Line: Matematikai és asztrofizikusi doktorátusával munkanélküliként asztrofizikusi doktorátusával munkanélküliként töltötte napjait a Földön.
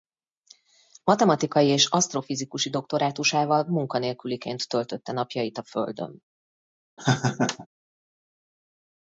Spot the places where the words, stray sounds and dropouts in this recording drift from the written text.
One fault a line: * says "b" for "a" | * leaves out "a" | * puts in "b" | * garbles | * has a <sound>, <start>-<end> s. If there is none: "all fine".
* leaves out "asztrofizikusi doktorátusával munkanélküliként"
* has a laugh, 7.0-7.7 s